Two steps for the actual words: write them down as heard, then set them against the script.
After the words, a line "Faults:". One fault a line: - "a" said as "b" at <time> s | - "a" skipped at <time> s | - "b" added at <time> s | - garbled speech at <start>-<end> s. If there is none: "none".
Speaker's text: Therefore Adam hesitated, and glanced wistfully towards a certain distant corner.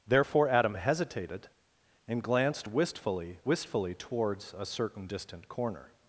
Therefore Adam hesitated, and glanced wistfully wistfully towards a certain distant corner.
Faults:
- "wistfully" added at 3.4 s